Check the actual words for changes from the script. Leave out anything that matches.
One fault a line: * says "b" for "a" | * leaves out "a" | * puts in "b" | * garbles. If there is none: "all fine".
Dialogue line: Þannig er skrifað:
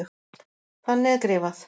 all fine